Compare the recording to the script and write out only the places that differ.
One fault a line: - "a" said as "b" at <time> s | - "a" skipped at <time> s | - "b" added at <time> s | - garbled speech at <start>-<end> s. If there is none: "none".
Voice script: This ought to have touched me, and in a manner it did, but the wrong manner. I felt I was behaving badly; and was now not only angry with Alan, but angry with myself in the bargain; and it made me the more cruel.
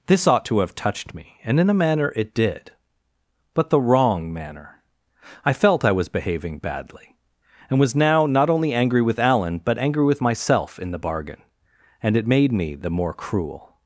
none